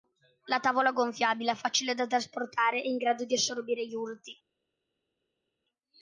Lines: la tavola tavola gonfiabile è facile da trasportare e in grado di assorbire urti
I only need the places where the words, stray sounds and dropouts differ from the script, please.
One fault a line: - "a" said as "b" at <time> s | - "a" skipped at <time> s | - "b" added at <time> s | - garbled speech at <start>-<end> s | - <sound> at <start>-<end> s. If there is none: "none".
- "tavola" skipped at 0.9 s
- "gli" added at 3.8 s